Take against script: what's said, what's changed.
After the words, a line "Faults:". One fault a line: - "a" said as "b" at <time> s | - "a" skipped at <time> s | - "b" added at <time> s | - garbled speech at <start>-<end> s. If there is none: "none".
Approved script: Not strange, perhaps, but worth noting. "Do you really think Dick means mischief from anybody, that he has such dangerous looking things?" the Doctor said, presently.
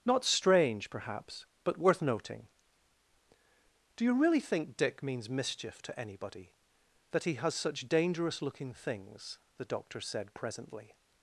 Not strange, perhaps, but worth noting. "Do you really think Dick means mischief to anybody, that he has such dangerous looking things?" the Doctor said, presently.
Faults:
- "from" said as "to" at 5.8 s